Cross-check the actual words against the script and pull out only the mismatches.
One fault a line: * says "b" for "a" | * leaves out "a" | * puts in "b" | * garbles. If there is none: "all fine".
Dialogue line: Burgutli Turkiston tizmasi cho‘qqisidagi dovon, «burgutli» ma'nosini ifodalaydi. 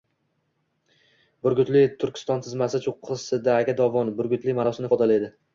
all fine